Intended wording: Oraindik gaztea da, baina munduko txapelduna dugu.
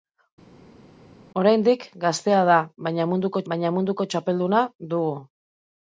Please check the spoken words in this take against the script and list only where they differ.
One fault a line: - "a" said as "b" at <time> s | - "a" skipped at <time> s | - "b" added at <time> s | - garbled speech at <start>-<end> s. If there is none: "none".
- "baina munduko" added at 3.5 s